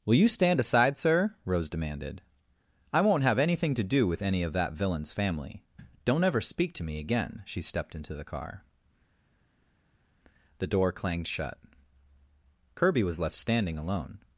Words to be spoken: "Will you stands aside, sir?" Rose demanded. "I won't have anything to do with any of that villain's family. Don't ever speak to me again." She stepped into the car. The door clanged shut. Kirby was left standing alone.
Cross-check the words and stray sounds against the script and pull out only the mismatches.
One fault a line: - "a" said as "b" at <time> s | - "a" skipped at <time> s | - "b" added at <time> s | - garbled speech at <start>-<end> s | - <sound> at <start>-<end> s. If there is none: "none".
- "stands" said as "stand" at 0.3 s